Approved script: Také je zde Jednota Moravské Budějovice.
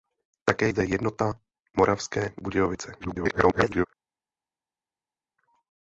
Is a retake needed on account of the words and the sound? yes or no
yes